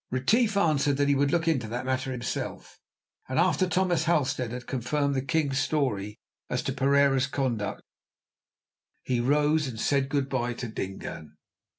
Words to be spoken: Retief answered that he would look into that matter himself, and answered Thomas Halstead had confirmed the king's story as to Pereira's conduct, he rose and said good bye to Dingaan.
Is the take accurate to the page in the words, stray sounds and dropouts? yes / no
no